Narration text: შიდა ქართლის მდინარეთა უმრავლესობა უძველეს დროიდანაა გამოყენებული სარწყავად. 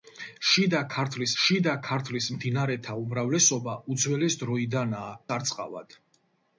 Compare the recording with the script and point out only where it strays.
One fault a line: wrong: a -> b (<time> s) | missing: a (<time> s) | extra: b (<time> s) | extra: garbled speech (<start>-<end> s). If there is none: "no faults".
extra: შიდა ქართლის (1.4 s)
missing: გამოყენებული (5.1 s)